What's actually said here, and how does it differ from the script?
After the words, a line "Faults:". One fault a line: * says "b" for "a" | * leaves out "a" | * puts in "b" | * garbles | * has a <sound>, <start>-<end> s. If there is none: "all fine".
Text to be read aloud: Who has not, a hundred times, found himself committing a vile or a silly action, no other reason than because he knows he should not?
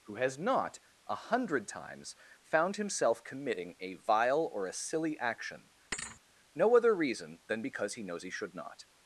Who has not, a hundred times, found himself committing a vile or a silly action, no other reason than because he knows he should not?
Faults:
* has a thud, 5.9-6.2 s